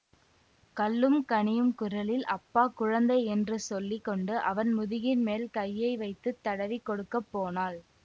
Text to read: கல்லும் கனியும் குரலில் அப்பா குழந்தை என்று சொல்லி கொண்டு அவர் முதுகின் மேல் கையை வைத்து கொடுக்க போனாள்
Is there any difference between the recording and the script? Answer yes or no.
yes